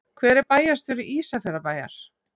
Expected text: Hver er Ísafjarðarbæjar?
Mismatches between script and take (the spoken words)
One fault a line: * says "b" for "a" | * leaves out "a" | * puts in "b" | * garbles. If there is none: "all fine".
* puts in "bæjarstjóri"